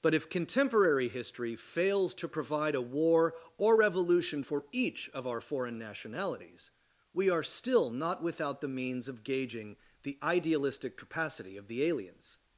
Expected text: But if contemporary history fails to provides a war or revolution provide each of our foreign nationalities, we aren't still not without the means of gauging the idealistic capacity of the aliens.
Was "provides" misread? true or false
true